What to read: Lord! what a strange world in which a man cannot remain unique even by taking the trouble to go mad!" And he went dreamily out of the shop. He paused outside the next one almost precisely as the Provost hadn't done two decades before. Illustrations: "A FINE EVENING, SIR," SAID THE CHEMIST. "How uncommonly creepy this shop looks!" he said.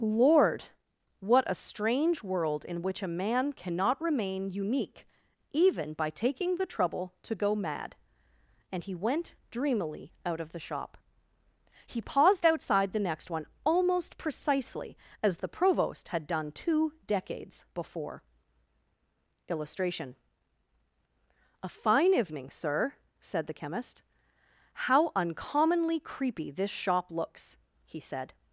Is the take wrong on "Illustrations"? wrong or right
wrong